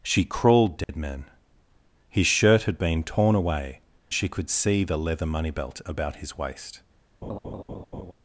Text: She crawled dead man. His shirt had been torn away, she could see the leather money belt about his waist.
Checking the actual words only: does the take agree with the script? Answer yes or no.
yes